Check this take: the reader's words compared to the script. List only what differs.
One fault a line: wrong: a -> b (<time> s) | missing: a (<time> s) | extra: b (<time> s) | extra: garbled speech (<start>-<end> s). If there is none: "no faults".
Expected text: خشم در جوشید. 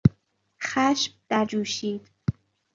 no faults